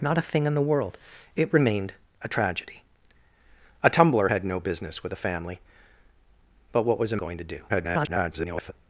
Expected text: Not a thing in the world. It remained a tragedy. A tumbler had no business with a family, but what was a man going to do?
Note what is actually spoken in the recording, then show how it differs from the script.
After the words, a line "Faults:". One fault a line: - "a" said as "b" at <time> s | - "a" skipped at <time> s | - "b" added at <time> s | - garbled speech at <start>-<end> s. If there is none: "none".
Not a thing in the world. It remained a tragedy. A tumbler had no business with a family, but what was a going to do? [garbled]
Faults:
- "man" skipped at 7.2 s
- garbled speech at 7.7-8.7 s